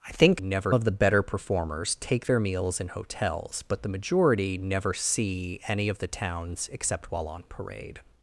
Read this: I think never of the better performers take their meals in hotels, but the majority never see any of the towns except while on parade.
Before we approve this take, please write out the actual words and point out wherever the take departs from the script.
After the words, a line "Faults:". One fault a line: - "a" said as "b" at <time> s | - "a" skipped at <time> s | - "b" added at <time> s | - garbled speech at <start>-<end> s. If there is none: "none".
I think never of the better performers take their meals in hotels, but the majority never see any of the towns except while on parade.
Faults:
none